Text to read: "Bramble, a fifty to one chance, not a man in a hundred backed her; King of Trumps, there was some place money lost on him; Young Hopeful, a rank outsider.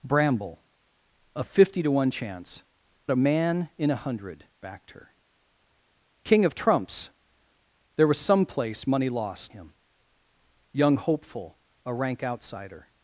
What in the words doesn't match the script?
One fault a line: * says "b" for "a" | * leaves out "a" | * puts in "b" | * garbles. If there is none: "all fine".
* leaves out "not"
* leaves out "on"